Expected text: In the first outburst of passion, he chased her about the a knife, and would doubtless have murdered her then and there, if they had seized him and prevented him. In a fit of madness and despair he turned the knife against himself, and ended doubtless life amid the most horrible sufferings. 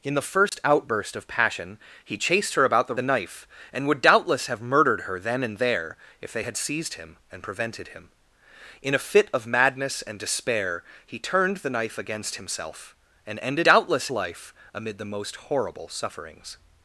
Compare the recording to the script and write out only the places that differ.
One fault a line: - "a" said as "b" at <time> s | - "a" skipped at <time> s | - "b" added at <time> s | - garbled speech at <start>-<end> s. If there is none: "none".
none